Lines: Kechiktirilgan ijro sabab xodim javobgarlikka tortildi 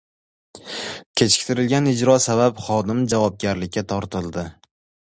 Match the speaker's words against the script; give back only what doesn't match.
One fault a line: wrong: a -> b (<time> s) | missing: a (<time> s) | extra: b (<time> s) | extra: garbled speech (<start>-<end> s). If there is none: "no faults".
no faults